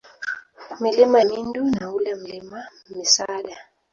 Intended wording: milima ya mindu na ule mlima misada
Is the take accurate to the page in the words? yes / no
no